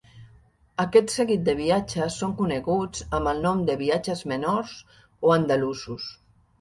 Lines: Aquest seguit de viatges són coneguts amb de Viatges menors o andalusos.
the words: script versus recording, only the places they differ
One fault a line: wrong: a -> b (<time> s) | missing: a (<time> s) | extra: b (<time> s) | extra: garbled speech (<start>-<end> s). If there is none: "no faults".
extra: el nom (3.3 s)